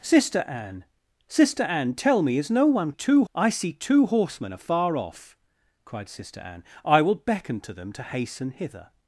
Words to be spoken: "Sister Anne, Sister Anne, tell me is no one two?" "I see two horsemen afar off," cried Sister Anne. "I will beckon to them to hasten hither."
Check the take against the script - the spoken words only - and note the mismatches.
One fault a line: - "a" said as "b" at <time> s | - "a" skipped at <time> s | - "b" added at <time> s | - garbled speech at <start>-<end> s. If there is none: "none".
none